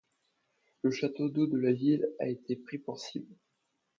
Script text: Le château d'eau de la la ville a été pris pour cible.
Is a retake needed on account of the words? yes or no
yes